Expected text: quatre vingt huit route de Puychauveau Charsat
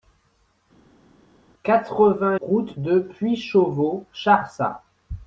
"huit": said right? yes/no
no